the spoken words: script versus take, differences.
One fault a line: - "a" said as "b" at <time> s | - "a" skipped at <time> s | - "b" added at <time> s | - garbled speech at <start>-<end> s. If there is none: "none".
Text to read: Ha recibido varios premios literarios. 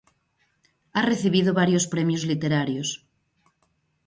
none